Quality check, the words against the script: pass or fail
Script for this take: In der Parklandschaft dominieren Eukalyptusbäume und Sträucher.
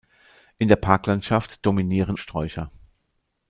fail